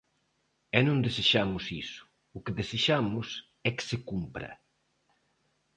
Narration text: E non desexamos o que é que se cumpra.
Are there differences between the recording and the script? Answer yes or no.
yes